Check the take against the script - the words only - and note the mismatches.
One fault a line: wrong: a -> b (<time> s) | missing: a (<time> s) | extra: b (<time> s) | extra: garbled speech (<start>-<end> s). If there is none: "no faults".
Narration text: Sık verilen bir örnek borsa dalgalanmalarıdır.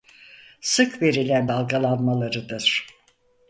missing: bir örnek borsa (1.5 s)